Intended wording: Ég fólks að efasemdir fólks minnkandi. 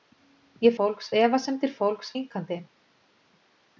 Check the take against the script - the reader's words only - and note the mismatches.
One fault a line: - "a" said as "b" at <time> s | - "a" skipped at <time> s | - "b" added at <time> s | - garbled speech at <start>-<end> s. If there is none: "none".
none